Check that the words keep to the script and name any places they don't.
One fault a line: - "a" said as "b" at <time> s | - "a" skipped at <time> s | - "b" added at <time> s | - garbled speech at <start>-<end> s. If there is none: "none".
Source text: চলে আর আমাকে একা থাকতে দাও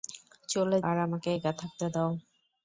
none